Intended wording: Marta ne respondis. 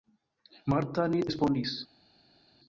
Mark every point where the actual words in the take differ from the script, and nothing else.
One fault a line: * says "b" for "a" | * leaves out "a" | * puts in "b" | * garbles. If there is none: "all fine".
all fine